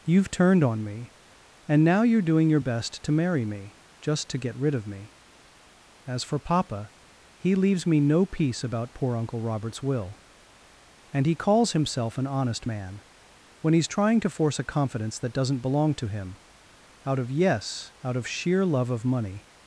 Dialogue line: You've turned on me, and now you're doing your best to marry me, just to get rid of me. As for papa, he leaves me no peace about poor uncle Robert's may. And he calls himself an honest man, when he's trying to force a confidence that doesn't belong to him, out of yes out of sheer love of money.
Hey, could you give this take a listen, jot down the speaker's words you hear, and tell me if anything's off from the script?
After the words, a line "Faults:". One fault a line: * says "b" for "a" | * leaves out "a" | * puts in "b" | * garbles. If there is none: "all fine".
You've turned on me, and now you're doing your best to marry me, just to get rid of me. As for papa, he leaves me no peace about poor uncle Robert's will. And he calls himself an honest man, when he's trying to force a confidence that doesn't belong to him, out of yes out of sheer love of money.
Faults:
* says "will" for "may"